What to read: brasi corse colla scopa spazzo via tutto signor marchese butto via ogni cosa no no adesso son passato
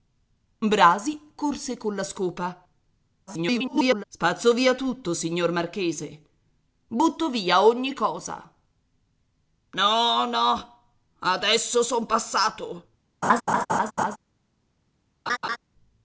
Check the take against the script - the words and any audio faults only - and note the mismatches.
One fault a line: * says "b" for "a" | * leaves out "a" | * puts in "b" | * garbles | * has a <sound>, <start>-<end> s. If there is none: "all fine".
* garbles
* has a laugh, 13.2-14.2 s
* has a laugh, 15.3-15.6 s